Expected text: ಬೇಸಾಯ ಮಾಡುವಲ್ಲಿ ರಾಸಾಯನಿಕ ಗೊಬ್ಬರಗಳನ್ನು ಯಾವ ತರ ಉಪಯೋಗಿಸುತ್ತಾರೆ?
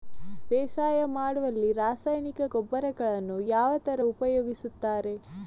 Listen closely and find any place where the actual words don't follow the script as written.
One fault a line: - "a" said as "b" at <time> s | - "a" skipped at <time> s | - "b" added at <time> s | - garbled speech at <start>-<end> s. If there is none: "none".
none